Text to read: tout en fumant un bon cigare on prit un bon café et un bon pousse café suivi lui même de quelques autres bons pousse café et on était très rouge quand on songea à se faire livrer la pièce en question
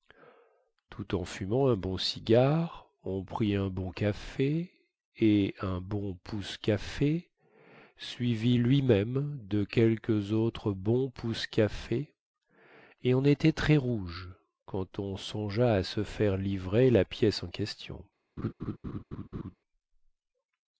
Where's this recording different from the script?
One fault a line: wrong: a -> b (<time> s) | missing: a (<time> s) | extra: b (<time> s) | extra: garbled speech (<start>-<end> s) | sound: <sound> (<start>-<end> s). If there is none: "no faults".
sound: laugh (18.4-19.6 s)